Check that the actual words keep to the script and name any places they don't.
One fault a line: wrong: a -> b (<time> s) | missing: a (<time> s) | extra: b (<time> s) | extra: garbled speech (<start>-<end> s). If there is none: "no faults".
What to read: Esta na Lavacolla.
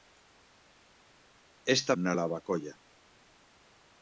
no faults